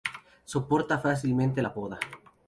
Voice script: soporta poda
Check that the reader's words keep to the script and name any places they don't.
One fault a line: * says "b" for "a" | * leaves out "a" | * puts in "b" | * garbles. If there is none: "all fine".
* puts in "fácilmente la"